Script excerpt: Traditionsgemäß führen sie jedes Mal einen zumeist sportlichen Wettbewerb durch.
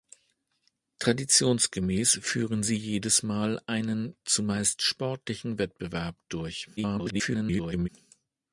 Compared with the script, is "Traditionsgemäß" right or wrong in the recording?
right